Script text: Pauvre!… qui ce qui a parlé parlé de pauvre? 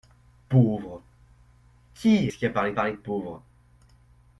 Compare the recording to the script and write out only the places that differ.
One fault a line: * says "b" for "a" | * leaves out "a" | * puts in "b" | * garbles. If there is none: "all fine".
all fine